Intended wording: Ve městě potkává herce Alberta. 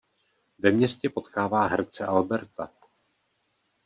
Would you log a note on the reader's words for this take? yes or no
no